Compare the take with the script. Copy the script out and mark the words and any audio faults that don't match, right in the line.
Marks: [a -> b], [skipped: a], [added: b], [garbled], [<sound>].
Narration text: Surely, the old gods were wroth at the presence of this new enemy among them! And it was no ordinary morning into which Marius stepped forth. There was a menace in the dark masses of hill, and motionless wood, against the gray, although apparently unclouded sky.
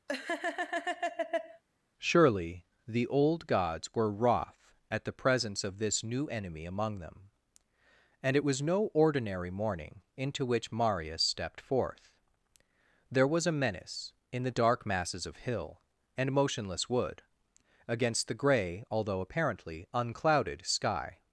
[laugh] Surely, the old gods were wroth at the presence of this new enemy among them! And it was no ordinary morning into which Marius stepped forth. There was a menace in the dark masses of hill, and motionless wood, against the gray, although apparently unclouded sky.